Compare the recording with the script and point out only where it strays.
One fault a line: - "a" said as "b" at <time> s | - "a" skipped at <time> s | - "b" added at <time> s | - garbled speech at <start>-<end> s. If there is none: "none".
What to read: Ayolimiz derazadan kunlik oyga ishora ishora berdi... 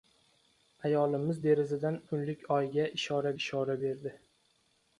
none